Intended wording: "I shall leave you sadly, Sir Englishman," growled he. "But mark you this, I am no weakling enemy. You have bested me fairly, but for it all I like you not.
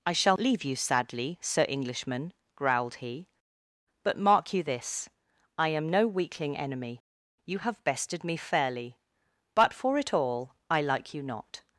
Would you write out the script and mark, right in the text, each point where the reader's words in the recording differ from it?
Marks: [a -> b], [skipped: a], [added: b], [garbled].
"I shall leave you sadly, Sir Englishman," growled he. "But mark you this, I am no weakling enemy. You have bested me fairly, but for it all I like you not.